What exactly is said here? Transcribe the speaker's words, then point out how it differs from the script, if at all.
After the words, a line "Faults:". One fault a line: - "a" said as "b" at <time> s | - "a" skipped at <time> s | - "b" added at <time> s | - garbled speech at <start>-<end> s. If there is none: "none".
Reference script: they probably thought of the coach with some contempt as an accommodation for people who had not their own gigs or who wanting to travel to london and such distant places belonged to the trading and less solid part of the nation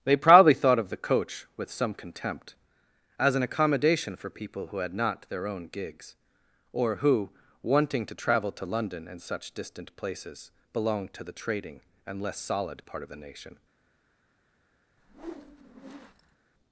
they probably thought of the coach with some contempt as an accommodation for people who had not their own gigs or who wanting to travel to london and such distant places belonged to the trading and less solid part of the nation
Faults:
none